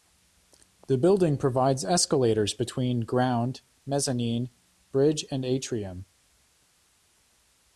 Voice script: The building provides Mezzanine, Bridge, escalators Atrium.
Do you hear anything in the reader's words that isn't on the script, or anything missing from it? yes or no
yes